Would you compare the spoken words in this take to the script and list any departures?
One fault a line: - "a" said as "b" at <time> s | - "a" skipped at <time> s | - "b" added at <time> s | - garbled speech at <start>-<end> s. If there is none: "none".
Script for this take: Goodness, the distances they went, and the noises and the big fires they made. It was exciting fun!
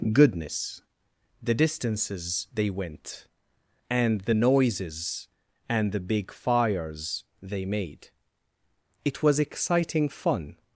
none